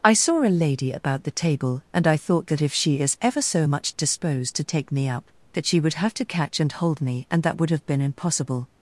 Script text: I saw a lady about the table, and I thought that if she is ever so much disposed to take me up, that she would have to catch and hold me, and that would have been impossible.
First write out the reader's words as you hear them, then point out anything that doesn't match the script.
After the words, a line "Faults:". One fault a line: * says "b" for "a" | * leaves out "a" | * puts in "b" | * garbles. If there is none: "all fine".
I saw a lady about the table, and I thought that if she is ever so much disposed to take me up, that she would have to catch and hold me, and that would have been impossible.
Faults:
all fine